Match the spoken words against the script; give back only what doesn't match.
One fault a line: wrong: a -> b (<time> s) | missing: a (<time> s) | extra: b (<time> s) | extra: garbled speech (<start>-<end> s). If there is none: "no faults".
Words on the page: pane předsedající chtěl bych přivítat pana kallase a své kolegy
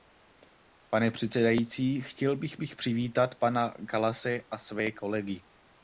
extra: bych (2.6 s)